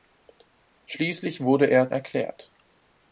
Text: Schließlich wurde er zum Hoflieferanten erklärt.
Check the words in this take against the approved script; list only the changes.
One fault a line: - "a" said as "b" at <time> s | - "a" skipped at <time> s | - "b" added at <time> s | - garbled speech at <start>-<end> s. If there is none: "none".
- "zum Hoflieferanten" skipped at 1.9 s